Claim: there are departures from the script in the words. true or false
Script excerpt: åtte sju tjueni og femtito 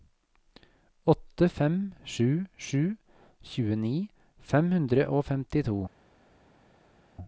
true